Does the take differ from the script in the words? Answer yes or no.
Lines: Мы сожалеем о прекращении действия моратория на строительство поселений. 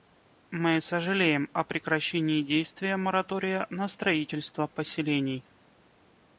no